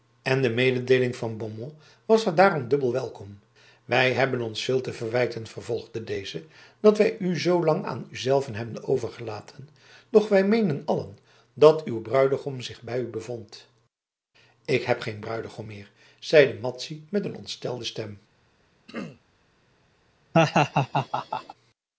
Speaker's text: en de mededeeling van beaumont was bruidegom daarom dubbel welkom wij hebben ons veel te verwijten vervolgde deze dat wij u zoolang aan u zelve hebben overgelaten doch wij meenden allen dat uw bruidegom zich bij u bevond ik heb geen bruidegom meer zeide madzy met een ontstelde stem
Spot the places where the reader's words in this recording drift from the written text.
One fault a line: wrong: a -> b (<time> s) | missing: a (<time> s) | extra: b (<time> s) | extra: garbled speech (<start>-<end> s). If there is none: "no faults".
wrong: bruidegom -> haar (2.2 s)